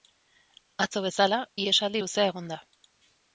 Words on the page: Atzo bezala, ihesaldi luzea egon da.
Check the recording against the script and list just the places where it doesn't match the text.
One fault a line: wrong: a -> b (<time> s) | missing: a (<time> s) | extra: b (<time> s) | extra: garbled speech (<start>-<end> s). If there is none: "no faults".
no faults